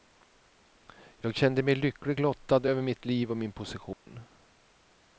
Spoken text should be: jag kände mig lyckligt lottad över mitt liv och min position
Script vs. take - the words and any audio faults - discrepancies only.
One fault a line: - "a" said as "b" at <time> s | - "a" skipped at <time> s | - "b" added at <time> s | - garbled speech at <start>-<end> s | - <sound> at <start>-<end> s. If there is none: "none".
- dropout at 3.9-4.1 s